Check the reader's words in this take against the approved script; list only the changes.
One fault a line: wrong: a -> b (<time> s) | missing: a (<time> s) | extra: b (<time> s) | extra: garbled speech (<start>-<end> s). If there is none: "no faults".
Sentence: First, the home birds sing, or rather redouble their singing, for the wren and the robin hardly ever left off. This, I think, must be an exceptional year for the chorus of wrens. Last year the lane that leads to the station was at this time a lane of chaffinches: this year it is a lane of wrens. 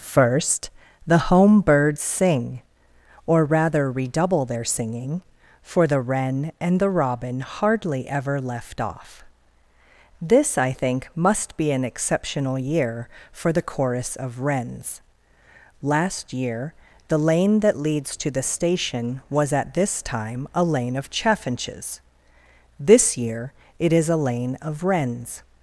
no faults